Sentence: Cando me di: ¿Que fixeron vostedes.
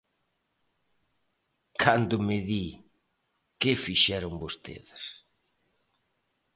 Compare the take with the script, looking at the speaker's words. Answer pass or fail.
pass